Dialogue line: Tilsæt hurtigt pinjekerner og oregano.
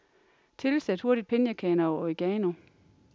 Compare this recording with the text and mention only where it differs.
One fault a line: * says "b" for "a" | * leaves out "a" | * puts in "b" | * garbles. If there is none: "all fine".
all fine